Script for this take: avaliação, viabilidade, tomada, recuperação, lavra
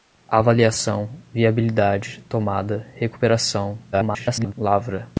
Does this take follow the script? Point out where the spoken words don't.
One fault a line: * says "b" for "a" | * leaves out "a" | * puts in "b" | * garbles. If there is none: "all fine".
* garbles